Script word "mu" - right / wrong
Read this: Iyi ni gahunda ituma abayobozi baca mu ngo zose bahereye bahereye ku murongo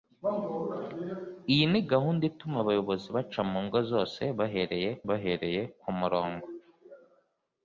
right